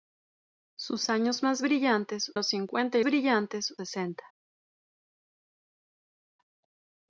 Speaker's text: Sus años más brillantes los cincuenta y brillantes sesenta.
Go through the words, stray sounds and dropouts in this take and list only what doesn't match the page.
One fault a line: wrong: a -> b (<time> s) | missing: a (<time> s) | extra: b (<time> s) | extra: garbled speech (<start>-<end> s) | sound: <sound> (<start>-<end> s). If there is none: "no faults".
no faults